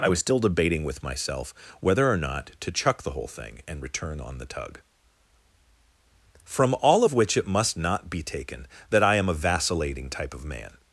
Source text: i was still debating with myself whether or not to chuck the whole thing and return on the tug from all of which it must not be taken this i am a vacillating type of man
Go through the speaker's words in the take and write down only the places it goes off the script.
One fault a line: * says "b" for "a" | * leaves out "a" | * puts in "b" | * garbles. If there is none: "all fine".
* says "that" for "this"